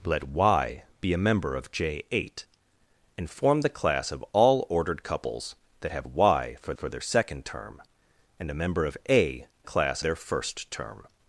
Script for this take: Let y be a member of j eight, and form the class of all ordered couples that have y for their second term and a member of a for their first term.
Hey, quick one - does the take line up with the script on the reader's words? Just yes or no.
no